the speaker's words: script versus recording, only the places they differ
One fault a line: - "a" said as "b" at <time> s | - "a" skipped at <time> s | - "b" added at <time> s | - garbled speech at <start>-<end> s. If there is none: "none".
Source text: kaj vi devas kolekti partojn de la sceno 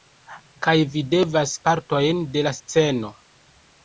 - "kolekti" skipped at 1.5 s